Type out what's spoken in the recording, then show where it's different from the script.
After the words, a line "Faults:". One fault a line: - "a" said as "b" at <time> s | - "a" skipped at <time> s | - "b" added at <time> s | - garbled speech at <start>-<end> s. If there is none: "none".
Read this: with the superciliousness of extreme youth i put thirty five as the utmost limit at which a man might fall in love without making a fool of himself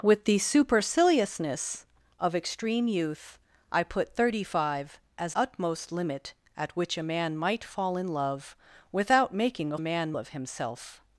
with the superciliousness of extreme youth i put thirty five as utmost limit at which a man might fall in love without making a man of himself
Faults:
- "the" skipped at 5.3 s
- "fool" said as "man" at 9.8 s